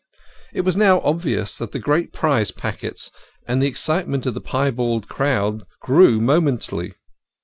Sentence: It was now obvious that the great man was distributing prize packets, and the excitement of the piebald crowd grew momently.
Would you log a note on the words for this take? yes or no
yes